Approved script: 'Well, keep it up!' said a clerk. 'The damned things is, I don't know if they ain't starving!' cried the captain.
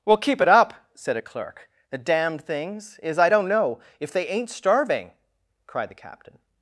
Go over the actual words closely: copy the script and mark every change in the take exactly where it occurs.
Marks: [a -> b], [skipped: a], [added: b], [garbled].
'Well, keep it up!' said a clerk. 'The damned things is, I don't know if they ain't starving!' cried the captain.